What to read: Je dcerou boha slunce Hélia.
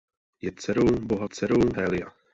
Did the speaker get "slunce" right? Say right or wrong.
wrong